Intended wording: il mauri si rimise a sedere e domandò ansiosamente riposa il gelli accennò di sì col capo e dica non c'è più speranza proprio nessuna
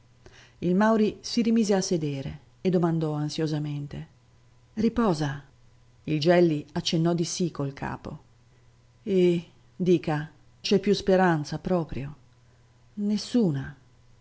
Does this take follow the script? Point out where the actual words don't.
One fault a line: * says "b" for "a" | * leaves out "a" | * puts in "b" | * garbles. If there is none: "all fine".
* leaves out "non"